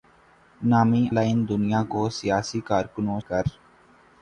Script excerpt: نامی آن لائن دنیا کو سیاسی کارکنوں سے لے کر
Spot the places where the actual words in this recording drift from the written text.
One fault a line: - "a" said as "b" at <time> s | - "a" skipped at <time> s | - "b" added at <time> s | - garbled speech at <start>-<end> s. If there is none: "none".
- "آن" skipped at 1.0 s
- "سے لے" skipped at 3.2 s